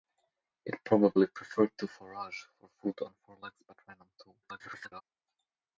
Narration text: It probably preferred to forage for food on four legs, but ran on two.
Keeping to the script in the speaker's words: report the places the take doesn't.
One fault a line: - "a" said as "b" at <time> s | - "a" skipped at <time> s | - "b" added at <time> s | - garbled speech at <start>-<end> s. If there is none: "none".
- garbled speech at 4.4-5.0 s